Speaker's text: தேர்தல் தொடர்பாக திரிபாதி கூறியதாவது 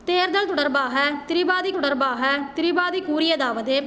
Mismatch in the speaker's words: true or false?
true